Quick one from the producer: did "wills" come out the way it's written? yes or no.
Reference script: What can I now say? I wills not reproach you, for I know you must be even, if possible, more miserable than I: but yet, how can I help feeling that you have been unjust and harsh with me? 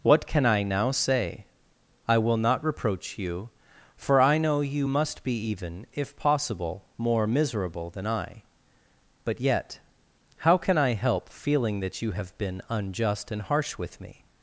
no